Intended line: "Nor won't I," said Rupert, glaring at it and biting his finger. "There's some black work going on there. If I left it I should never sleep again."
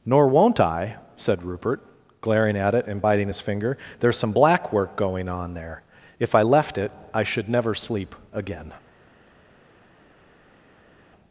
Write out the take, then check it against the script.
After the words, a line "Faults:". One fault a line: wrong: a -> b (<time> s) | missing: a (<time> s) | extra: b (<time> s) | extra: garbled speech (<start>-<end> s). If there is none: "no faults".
"Nor won't I," said Rupert, glaring at it and biting his finger. "There's some black work going on there. If I left it I should never sleep again."
Faults:
no faults